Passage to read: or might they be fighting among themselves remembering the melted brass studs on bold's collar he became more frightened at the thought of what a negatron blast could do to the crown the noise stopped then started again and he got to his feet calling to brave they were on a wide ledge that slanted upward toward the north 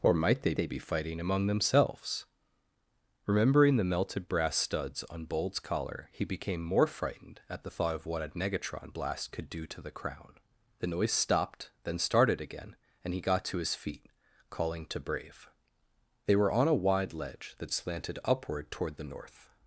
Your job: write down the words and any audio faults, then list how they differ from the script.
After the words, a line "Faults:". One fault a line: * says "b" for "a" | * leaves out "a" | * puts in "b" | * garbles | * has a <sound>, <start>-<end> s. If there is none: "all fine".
or might they they be fighting among themselves remembering the melted brass studs on bold's collar he became more frightened at the thought of what a negatron blast could do to the crown the noise stopped then started again and he got to his feet calling to brave they were on a wide ledge that slanted upward toward the north
Faults:
* puts in "they"